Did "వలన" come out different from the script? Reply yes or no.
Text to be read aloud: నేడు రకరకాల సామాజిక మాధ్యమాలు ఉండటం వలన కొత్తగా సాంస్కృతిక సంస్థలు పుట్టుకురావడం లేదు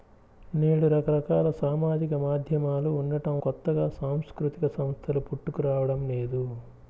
yes